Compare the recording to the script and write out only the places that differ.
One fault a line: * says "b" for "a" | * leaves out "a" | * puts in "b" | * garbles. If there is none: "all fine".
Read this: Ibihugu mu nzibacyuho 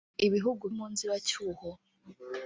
all fine